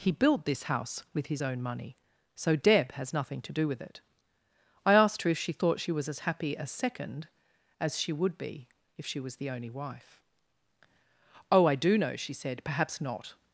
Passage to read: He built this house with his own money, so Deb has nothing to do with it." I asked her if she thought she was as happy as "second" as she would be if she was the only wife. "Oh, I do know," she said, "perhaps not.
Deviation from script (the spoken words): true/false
false